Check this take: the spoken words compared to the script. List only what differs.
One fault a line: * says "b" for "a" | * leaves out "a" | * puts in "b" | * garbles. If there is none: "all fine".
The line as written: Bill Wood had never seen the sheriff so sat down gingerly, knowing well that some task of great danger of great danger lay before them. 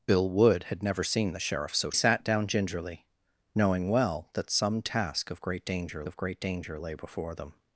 all fine